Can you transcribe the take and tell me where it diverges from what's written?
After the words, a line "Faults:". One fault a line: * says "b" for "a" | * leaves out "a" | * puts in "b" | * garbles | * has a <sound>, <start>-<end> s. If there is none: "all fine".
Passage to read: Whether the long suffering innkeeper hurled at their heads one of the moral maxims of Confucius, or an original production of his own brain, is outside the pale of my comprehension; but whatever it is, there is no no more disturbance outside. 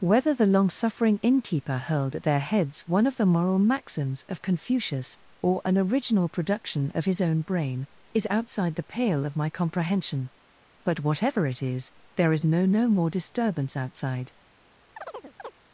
Whether the long suffering innkeeper hurled at their heads one of the moral maxims of Confucius, or an original production of his own brain, is outside the pale of my comprehension; but whatever it is, there is no no more disturbance outside.
Faults:
* has a chirp, 15.0-15.5 s